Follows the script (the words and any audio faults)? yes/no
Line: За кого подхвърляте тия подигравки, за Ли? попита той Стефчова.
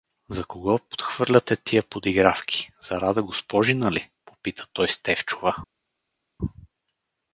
no